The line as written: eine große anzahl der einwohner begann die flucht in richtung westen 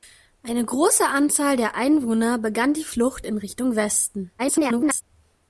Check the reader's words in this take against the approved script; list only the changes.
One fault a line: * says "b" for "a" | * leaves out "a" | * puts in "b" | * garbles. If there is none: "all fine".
* garbles